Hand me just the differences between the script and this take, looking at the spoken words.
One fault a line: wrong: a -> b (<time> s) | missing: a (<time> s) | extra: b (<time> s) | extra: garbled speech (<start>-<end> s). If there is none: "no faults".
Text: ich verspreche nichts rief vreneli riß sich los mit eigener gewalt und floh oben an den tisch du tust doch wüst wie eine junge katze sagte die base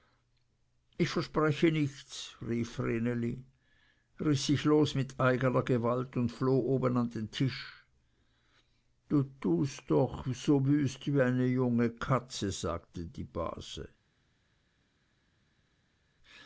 extra: so (10.3 s)